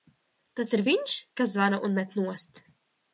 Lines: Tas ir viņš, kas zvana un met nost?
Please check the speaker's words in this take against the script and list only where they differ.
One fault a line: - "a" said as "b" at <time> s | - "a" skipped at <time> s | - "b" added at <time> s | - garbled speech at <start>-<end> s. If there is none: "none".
none